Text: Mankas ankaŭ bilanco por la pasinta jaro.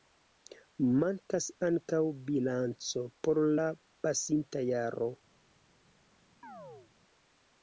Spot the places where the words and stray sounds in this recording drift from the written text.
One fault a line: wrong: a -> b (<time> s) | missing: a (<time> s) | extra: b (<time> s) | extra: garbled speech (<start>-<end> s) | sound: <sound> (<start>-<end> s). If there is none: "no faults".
sound: chirp (6.4-6.9 s)